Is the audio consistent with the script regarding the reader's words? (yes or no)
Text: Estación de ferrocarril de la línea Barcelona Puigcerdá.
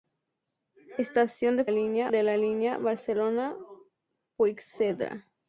no